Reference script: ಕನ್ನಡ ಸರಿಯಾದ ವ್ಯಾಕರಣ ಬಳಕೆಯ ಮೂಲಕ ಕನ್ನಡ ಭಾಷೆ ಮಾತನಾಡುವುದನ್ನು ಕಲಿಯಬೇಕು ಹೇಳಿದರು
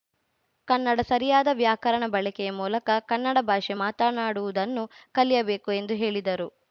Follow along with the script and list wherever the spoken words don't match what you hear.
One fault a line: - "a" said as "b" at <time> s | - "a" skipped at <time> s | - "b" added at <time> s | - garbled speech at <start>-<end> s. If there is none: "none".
- "ಎಂದು" added at 5.7 s